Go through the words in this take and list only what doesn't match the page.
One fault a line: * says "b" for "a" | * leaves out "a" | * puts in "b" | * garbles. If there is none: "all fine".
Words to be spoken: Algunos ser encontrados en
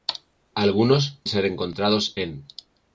all fine